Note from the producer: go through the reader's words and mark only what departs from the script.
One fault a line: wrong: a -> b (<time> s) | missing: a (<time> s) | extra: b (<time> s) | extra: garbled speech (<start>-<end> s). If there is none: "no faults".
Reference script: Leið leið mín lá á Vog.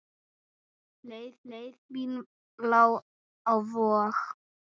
no faults